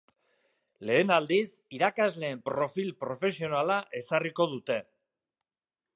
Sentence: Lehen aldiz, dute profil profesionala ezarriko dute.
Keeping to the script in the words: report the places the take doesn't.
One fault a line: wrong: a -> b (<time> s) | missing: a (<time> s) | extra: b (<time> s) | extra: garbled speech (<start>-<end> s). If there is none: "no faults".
wrong: dute -> irakasleen (1.8 s)